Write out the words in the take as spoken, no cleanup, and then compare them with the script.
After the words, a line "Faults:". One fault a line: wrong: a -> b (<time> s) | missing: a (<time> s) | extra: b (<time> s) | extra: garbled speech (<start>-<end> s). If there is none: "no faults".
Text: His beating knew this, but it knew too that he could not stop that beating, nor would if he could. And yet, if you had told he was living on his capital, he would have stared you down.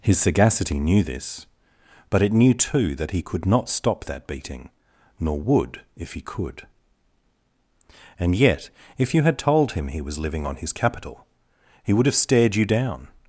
His sagacity knew this, but it knew too that he could not stop that beating, nor would if he could. And yet, if you had told him he was living on his capital, he would have stared you down.
Faults:
wrong: beating -> sagacity (0.2 s)
extra: him (9.7 s)